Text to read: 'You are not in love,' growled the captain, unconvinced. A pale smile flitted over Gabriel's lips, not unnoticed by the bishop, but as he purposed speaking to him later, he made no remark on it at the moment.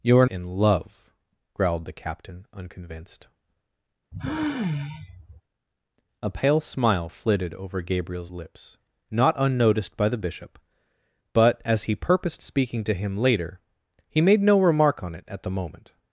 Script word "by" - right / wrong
right